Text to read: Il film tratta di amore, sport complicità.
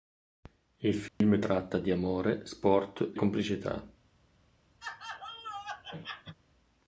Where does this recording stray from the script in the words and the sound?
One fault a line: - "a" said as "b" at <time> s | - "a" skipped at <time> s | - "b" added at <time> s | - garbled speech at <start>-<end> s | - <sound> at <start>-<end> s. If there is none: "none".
- dropout at 1.1-1.2 s
- laugh at 4.8-6.4 s